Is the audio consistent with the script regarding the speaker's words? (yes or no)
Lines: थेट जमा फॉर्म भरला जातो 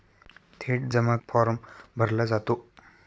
yes